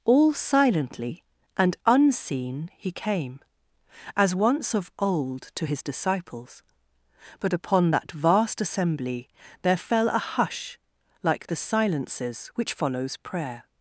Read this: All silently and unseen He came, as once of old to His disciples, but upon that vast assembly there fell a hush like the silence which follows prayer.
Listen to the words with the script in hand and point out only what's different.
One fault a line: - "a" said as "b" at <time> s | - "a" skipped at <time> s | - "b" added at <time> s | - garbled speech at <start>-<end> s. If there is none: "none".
- "silence" said as "silences" at 11.5 s